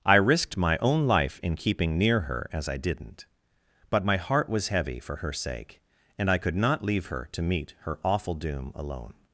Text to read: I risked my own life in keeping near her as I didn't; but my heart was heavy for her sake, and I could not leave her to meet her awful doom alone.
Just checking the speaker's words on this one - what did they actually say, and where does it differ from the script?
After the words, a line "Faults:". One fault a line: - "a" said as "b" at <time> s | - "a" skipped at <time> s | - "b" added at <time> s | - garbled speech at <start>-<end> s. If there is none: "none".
I risked my own life in keeping near her as I didn't; but my heart was heavy for her sake, and I could not leave her to meet her awful doom alone.
Faults:
none